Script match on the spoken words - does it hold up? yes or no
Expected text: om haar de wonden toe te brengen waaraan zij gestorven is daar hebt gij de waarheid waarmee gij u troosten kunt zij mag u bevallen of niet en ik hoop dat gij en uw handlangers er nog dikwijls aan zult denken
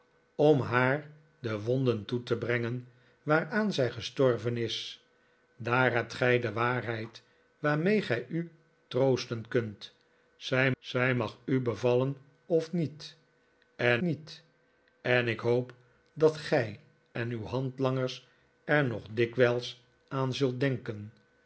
no